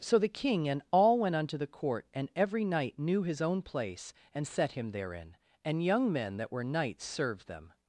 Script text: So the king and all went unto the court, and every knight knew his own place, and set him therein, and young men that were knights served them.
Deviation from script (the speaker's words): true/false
false